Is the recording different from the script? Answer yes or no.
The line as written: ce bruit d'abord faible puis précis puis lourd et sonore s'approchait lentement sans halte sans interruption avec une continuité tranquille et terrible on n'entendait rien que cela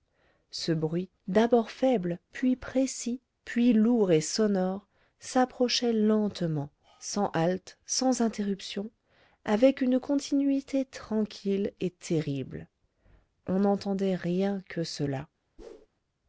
no